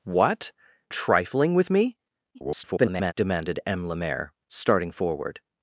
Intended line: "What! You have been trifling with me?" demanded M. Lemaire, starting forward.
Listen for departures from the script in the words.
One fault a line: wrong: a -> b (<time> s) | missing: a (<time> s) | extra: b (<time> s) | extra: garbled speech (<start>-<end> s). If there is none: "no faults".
missing: You have been (0.5 s)
extra: garbled speech (2.3-3.1 s)